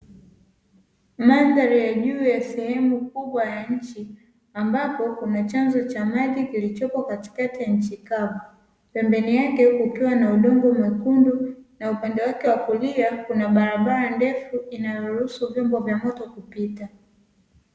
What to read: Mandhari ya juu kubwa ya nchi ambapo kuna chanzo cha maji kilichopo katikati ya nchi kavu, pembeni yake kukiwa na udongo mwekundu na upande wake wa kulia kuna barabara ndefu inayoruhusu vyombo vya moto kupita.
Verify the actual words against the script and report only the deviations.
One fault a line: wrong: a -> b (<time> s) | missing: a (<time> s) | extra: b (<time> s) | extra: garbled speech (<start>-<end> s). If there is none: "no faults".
extra: ya sehemu (2.2 s)